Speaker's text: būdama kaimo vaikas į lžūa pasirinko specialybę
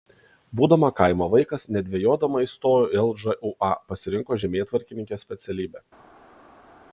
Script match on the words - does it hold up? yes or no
no